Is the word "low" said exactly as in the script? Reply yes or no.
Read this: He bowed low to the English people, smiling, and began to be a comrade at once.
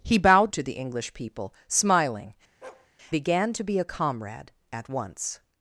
no